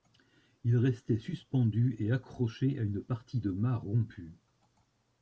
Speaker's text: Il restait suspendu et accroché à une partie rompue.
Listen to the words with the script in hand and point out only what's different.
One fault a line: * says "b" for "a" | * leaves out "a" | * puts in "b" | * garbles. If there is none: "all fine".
* puts in "de mât"